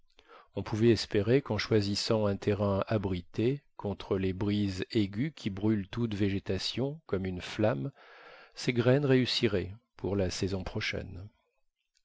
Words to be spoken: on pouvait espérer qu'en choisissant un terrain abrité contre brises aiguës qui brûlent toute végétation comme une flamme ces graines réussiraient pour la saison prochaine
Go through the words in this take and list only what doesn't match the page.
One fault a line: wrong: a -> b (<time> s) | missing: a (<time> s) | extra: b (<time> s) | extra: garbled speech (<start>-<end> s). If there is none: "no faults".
extra: les (4.2 s)